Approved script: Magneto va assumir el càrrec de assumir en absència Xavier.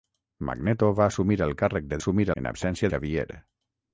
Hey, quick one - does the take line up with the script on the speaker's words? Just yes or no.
yes